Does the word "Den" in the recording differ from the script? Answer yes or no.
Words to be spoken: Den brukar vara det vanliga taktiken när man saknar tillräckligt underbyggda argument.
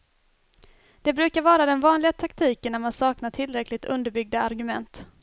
yes